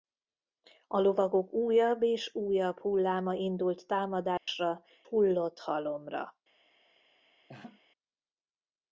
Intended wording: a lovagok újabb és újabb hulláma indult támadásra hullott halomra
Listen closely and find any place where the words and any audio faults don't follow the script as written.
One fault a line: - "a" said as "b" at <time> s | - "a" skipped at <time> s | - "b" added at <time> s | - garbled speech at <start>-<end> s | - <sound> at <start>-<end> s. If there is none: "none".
- dropout at 4.4-4.5 s
- laugh at 7.5-7.8 s